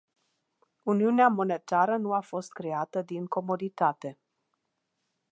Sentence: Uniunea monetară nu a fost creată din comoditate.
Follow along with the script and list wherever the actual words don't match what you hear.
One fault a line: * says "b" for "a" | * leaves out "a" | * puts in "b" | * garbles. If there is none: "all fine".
all fine